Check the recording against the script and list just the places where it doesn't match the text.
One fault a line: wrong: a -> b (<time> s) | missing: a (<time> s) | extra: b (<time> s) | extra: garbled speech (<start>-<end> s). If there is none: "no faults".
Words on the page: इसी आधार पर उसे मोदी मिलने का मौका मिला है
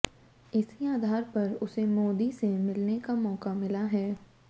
extra: से (2.4 s)